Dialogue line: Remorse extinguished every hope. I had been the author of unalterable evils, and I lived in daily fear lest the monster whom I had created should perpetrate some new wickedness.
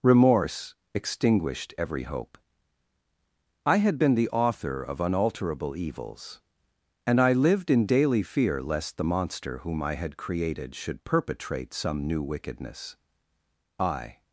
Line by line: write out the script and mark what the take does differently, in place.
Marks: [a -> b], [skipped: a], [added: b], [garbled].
Remorse extinguished every hope. I had been the author of unalterable evils, and I lived in daily fear lest the monster whom I had created should perpetrate some new wickedness. [added: I]